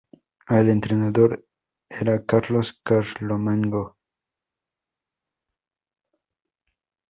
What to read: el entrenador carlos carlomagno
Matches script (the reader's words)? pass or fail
fail